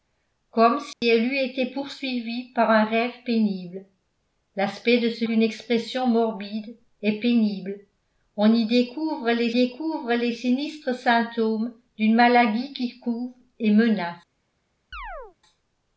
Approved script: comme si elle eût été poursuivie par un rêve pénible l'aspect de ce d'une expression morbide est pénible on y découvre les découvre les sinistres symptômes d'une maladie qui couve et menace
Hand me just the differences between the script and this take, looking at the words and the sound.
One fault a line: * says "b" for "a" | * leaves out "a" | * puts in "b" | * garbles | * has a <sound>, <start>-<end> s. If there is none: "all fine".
* has a dropout, 0.9-1.0 s
* has a chirp, 14.9-15.4 s